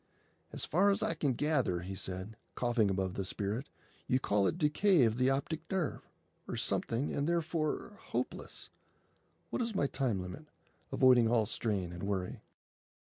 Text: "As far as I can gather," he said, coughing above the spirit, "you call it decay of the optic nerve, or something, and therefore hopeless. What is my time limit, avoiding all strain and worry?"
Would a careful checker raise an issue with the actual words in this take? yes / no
no